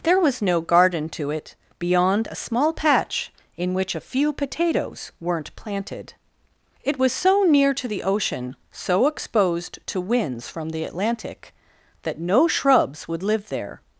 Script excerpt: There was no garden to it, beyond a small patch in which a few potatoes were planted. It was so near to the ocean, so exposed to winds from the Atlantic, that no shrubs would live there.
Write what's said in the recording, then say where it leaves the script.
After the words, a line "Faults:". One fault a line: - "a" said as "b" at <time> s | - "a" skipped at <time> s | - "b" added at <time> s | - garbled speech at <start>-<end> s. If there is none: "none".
There was no garden to it, beyond a small patch in which a few potatoes weren't planted. It was so near to the ocean, so exposed to winds from the Atlantic, that no shrubs would live there.
Faults:
- "were" said as "weren't" at 5.2 s